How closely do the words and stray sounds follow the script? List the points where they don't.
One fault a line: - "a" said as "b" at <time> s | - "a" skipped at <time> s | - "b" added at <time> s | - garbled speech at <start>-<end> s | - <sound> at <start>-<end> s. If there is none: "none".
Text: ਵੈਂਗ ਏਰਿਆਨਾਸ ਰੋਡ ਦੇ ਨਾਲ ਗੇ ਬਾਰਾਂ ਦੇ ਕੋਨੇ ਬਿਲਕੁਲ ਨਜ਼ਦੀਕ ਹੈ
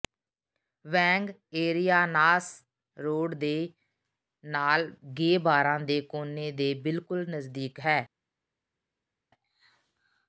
- "ਦੇ" added at 6.5 s